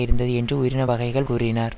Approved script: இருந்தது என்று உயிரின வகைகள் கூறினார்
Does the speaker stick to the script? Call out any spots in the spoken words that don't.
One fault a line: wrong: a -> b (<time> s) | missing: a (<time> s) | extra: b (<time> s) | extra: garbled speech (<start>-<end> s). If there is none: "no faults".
no faults